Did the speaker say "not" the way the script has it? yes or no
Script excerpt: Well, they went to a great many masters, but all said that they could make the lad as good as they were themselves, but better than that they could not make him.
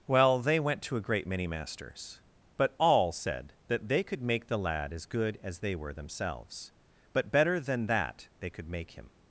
no